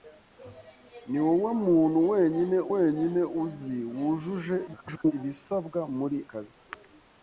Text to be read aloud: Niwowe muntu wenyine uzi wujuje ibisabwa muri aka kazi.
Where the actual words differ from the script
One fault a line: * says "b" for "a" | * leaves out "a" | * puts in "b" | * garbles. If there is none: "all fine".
* puts in "wenyine"
* garbles
* leaves out "aka"